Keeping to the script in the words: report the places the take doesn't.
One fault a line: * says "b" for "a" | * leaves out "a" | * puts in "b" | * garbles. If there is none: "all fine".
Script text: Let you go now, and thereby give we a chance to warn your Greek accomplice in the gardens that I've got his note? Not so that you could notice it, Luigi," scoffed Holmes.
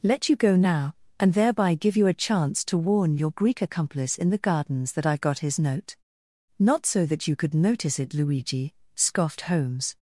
* says "you" for "we"